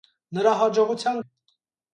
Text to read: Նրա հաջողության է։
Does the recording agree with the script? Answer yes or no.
yes